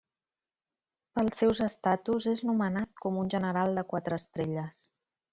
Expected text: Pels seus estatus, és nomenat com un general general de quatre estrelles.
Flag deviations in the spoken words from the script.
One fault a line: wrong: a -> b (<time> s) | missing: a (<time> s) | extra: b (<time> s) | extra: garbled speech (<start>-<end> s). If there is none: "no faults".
missing: general (3.7 s)